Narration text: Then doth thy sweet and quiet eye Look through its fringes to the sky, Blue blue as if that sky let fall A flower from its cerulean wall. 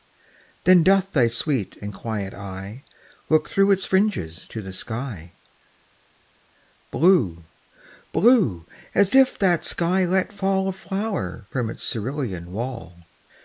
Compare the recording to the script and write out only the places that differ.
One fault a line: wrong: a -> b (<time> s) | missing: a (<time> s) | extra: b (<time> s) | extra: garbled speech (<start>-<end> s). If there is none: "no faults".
no faults